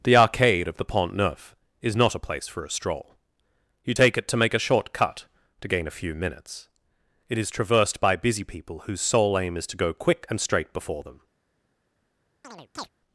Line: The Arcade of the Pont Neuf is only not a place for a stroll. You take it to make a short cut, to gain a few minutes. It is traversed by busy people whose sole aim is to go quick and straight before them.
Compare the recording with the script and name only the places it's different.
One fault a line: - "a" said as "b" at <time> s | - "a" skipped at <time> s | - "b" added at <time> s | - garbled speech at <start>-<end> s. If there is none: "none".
- "only" skipped at 1.9 s